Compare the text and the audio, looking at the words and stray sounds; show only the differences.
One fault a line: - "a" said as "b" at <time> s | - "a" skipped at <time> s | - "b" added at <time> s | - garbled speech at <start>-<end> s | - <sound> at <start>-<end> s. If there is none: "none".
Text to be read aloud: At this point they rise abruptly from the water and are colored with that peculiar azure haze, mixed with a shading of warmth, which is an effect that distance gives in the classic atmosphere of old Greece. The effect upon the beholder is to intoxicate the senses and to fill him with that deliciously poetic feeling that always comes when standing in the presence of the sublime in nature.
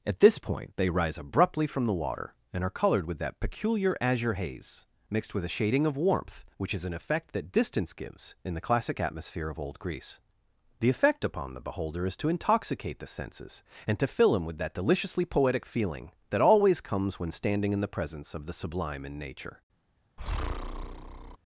- breath at 20.2-21.4 s